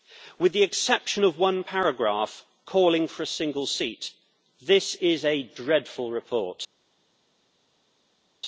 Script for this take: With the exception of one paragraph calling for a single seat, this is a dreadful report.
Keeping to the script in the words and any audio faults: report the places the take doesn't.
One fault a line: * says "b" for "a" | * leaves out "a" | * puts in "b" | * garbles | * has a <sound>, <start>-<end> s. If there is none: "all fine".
all fine